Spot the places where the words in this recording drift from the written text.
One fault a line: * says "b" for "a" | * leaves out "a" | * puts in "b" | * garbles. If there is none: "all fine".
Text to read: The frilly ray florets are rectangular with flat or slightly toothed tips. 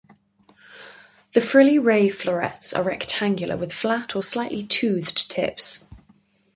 all fine